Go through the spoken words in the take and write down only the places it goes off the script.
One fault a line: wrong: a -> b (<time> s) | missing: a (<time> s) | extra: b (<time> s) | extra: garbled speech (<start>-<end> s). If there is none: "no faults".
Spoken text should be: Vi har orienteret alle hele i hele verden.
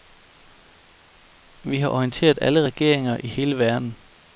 wrong: hele -> regeringer (2.6 s)